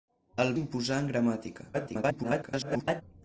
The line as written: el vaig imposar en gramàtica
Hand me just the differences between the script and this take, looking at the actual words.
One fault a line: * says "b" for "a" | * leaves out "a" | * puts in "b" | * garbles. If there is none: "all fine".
* leaves out "vaig"
* garbles